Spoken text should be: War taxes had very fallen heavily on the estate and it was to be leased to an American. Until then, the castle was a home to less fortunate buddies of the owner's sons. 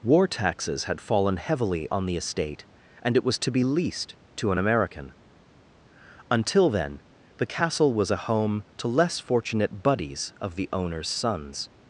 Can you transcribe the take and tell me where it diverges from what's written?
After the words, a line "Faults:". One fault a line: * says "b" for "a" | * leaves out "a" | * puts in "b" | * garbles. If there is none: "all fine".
War taxes had fallen heavily on the estate and it was to be leased to an American. Until then, the castle was a home to less fortunate buddies of the owner's sons.
Faults:
* leaves out "very"